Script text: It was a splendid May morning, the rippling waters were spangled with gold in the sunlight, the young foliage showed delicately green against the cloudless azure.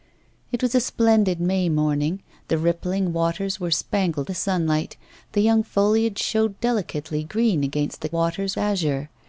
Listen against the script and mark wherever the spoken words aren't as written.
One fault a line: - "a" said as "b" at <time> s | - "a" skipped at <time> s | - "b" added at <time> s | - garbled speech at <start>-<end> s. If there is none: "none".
- "with gold in" skipped at 4.3 s
- "cloudless" said as "waters" at 8.1 s